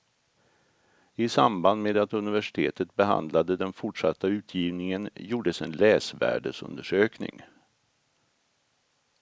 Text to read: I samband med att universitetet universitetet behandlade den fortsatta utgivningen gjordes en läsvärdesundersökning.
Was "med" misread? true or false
false